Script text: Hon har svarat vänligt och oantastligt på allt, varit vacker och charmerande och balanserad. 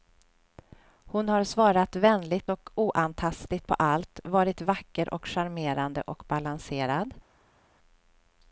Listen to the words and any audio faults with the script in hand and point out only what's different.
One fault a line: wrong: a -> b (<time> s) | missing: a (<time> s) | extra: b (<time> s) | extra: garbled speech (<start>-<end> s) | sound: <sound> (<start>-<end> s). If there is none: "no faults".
no faults